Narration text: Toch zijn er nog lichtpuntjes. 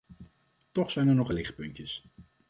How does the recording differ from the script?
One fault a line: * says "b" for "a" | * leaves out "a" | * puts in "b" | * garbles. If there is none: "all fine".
all fine